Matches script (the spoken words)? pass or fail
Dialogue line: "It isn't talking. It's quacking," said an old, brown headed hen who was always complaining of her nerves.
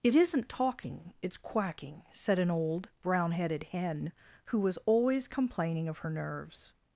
pass